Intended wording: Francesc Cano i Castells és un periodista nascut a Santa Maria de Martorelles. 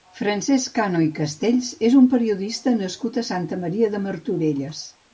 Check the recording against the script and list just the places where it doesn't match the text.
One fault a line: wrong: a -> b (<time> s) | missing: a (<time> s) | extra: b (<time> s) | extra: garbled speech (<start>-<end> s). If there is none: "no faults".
no faults